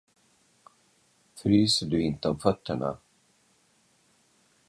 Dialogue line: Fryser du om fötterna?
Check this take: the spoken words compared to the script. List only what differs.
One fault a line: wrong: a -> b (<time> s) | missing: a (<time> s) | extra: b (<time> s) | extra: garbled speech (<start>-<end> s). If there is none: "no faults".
extra: inte (2.0 s)